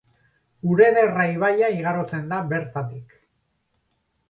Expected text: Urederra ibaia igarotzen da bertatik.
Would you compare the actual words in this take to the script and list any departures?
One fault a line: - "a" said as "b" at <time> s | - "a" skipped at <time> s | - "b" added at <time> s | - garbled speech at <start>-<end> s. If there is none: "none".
none